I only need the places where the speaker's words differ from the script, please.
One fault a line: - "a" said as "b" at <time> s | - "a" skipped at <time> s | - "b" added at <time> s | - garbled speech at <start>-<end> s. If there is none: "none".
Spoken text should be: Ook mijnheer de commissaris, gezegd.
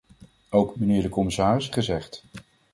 none